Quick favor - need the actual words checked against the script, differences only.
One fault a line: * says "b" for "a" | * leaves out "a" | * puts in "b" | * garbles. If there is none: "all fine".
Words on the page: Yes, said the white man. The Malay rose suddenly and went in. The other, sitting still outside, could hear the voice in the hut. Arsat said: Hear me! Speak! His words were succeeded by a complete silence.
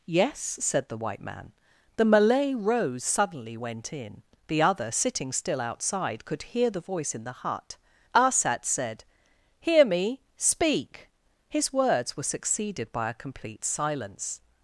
* leaves out "and"